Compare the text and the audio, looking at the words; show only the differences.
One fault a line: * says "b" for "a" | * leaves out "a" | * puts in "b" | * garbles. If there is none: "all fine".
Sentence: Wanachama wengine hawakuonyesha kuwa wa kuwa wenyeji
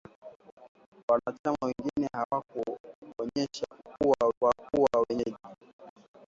all fine